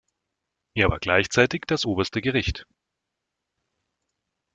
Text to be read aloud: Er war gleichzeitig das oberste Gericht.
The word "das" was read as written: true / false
true